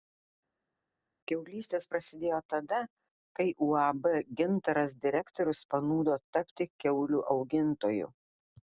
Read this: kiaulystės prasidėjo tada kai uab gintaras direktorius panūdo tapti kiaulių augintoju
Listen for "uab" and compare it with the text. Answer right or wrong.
right